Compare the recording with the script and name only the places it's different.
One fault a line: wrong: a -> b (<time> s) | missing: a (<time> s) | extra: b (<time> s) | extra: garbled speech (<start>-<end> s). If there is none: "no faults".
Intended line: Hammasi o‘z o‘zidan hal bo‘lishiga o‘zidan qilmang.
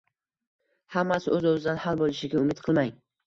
wrong: o‘zidan -> umid (2.5 s)